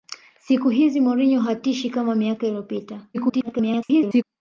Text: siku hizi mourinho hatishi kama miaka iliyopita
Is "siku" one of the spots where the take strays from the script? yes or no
no